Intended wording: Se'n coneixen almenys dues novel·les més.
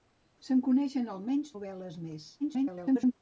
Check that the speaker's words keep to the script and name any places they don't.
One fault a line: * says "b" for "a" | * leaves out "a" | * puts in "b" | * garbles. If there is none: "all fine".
* leaves out "dues"
* garbles